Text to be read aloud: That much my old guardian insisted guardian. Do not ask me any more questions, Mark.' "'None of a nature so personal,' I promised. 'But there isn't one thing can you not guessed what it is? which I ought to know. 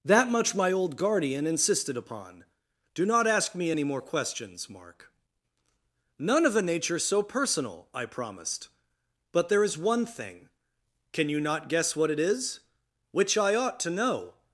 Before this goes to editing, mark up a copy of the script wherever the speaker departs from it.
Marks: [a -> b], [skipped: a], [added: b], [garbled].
That much my old guardian insisted [guardian. -> upon] Do not ask me any more questions, Mark.' "'None of a nature so personal,' I promised. 'But there [isn't -> is] one thing can you not [guessed -> guess] what it is? which I ought to know.